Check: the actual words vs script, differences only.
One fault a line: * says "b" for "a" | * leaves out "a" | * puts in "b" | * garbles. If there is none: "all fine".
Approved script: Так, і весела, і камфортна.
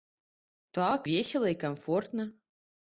* leaves out "і"